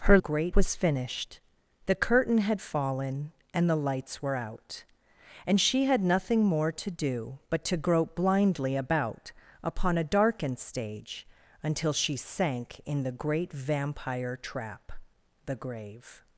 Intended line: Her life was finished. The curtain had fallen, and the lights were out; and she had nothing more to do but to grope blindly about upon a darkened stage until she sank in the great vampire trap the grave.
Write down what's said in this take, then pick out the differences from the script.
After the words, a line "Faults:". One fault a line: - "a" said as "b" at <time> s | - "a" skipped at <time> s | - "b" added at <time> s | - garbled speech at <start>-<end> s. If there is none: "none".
Her great was finished. The curtain had fallen, and the lights were out; and she had nothing more to do but to grope blindly about upon a darkened stage until she sank in the great vampire trap the grave.
Faults:
- "life" said as "great" at 0.2 s